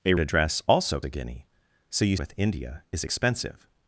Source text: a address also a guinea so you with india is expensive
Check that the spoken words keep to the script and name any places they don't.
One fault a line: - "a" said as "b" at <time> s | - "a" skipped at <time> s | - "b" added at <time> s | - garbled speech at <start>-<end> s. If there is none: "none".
none